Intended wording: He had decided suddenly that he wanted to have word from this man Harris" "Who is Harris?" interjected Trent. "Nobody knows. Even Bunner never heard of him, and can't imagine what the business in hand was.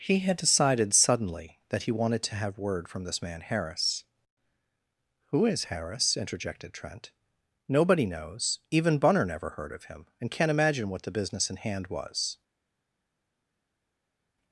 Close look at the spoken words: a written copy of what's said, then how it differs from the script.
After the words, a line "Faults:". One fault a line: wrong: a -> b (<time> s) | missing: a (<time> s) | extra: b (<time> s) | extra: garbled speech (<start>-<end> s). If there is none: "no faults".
He had decided suddenly that he wanted to have word from this man Harris" "Who is Harris?" interjected Trent. "Nobody knows. Even Bunner never heard of him, and can't imagine what the business in hand was.
Faults:
no faults